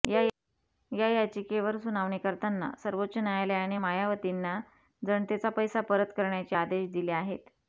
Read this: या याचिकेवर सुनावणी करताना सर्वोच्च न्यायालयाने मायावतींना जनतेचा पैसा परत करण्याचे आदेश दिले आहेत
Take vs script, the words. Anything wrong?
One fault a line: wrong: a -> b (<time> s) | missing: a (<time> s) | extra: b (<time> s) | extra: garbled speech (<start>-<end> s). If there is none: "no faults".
no faults